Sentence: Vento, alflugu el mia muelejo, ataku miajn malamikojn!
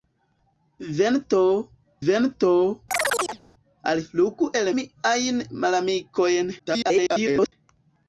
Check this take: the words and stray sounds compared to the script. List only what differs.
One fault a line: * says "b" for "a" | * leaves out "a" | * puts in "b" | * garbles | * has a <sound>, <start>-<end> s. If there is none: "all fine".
* puts in "vento"
* has a chirp, 2.9-3.4 s
* leaves out "mia muelejo ataku"
* garbles